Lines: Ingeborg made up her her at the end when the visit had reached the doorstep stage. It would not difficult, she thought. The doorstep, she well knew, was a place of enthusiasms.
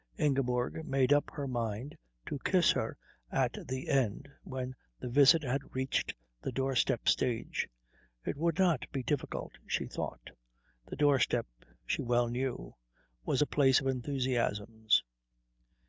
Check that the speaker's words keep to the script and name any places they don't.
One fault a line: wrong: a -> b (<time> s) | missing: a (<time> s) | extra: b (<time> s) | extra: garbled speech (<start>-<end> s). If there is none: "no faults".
extra: mind to kiss (1.5 s)
extra: be (8.9 s)